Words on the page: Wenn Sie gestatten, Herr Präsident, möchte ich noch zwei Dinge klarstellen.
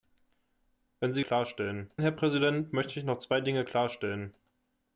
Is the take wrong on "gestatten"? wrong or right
wrong